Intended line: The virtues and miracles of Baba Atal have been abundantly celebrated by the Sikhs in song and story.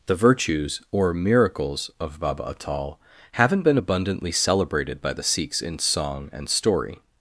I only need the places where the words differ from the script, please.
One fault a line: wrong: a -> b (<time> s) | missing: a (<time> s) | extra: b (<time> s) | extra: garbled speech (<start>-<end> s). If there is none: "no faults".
wrong: and -> or (0.9 s)
wrong: have -> haven't (3.3 s)